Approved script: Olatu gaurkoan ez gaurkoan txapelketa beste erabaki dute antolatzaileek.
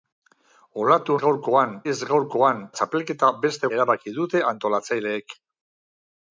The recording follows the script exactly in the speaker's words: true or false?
true